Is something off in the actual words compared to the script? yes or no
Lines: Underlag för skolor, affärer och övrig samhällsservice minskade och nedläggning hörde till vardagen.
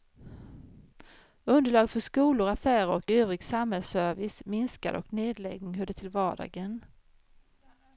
no